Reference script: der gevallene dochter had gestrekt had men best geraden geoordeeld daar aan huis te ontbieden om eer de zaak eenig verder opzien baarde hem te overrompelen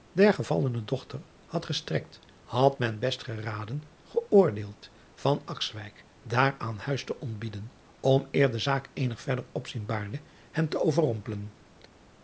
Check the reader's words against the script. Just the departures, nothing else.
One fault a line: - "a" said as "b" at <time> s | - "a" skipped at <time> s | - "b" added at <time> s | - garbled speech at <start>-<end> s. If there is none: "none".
none